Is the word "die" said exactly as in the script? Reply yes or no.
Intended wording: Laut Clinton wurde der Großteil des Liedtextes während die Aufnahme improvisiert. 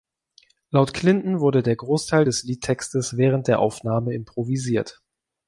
no